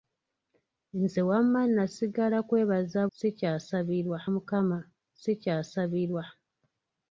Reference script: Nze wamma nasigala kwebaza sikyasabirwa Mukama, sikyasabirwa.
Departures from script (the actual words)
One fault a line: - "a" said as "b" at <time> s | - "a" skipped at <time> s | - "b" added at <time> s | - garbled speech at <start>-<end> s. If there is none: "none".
none